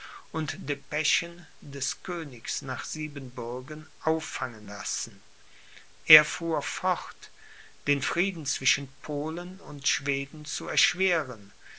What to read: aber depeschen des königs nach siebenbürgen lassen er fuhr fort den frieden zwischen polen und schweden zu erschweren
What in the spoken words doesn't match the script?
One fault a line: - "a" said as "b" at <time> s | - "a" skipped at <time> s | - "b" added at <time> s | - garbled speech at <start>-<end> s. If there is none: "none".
- "aber" said as "und" at 0.3 s
- "auffangen" added at 4.0 s